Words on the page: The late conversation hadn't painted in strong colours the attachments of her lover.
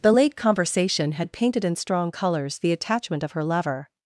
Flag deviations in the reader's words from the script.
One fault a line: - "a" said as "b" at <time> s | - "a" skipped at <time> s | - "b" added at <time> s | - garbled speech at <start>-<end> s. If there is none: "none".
- "hadn't" said as "had" at 1.1 s
- "attachments" said as "attachment" at 2.7 s